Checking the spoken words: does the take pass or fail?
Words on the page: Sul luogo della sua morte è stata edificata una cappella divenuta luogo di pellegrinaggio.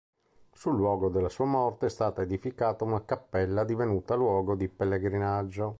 pass